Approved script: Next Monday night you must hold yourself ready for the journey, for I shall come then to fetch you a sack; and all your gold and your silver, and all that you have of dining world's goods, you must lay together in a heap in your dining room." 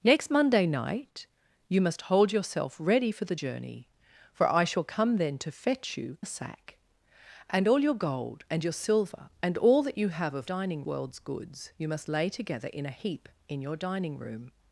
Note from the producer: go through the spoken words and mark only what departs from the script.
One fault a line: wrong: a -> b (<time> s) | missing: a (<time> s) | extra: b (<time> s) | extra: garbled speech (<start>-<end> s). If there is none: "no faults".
no faults